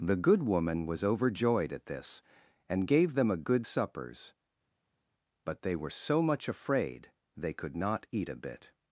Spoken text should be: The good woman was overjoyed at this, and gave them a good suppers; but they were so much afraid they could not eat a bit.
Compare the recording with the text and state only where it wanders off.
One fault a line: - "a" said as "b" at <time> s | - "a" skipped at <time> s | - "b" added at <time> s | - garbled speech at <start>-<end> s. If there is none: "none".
none